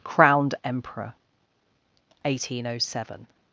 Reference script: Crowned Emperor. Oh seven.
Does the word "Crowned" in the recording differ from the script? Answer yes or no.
no